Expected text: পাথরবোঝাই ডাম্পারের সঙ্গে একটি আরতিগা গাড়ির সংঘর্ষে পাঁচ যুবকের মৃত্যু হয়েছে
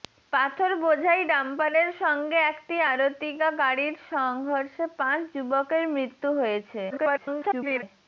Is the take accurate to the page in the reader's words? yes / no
no